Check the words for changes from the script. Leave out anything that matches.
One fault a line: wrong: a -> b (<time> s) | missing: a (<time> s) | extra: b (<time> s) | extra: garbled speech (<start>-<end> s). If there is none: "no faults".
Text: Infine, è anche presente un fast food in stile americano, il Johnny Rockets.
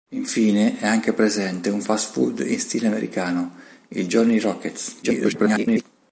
extra: garbled speech (5.0-5.8 s)